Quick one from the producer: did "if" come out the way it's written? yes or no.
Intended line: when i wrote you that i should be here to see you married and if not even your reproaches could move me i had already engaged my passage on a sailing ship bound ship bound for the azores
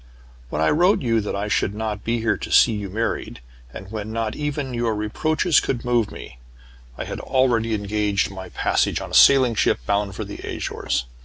no